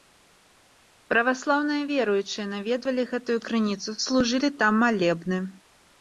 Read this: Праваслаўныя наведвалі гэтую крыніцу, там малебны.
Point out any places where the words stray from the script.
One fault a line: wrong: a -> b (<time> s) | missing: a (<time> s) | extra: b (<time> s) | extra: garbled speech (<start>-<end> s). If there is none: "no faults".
extra: веруючыя (1.9 s)
extra: служылі (4.0 s)